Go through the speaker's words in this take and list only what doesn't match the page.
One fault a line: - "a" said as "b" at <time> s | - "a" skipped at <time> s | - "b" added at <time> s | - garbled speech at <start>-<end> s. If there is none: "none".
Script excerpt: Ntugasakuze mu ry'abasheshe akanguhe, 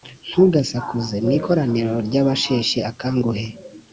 - "ikoraniro" added at 1.4 s